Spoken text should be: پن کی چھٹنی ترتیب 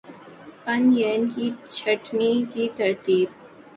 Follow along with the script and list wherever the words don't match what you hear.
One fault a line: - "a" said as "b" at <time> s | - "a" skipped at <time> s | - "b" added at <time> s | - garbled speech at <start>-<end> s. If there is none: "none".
- "ین" added at 1.0 s
- "کی" added at 2.5 s